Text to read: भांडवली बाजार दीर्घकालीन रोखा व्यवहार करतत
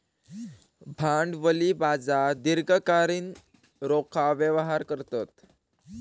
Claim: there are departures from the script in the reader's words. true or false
false